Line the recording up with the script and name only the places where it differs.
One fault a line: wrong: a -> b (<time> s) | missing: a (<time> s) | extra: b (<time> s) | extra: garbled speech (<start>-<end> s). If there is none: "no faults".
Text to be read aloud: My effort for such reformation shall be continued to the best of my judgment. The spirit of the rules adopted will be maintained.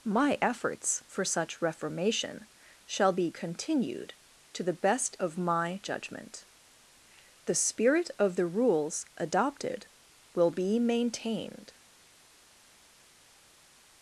wrong: effort -> efforts (0.4 s)